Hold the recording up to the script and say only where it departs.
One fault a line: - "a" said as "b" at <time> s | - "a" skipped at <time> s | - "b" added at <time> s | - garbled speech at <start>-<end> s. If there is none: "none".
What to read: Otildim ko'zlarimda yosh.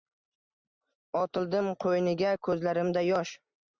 - "qo'yniga" added at 1.9 s